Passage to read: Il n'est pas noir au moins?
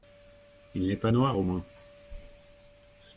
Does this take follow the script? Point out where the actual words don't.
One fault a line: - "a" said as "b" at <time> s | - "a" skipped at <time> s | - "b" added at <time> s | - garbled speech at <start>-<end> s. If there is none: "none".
none